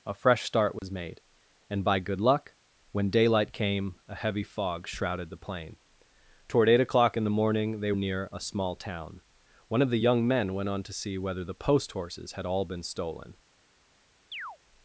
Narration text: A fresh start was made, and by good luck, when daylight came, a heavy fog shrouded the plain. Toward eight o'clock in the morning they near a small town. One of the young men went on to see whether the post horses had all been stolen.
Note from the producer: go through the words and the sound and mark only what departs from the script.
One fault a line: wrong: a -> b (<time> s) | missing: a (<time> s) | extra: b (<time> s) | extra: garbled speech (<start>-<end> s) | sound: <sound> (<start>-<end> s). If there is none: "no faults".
sound: dropout (0.8-0.8 s)
sound: chirp (14.3-14.6 s)